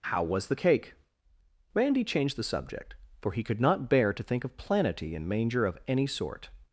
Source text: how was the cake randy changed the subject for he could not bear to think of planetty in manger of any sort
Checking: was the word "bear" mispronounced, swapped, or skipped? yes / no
no